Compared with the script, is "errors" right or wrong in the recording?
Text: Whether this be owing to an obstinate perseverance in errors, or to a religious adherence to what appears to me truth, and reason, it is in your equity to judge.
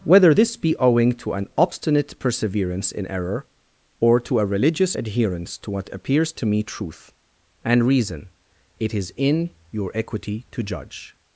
wrong